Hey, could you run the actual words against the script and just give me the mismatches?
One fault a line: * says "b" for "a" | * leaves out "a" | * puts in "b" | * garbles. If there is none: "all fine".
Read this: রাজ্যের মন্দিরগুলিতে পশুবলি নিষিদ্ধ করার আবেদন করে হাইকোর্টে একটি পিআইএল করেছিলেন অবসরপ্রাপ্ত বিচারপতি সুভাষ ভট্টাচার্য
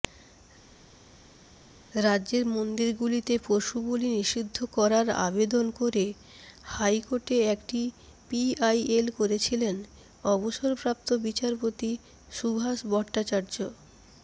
all fine